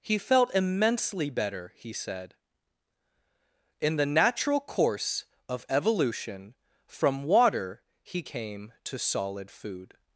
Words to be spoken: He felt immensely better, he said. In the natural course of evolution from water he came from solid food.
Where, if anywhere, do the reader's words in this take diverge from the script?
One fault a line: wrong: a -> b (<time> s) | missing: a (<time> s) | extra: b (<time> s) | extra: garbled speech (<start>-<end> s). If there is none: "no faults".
wrong: from -> to (8.8 s)